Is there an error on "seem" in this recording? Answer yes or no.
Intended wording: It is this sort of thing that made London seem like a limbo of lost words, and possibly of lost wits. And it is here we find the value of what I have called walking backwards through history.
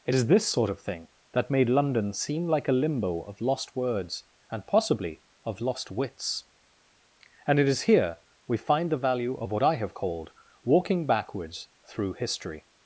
no